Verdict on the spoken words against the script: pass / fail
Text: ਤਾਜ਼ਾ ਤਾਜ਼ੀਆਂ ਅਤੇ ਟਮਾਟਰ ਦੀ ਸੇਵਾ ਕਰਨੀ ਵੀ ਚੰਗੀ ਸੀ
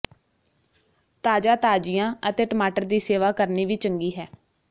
fail